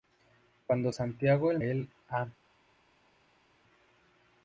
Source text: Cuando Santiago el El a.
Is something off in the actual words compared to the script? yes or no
no